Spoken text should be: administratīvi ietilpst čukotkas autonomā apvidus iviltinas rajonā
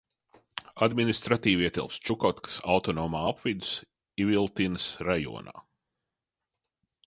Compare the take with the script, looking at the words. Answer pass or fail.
pass